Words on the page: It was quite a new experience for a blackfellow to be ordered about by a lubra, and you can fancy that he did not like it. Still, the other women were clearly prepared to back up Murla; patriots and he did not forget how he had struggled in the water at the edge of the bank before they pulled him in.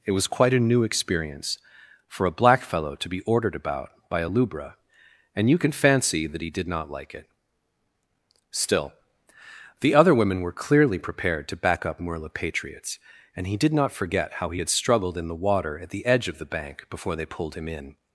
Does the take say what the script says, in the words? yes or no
yes